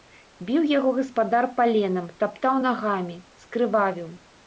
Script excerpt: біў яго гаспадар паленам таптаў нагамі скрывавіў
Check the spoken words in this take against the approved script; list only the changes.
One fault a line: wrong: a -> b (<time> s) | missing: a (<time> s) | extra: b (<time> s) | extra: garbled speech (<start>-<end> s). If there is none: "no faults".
no faults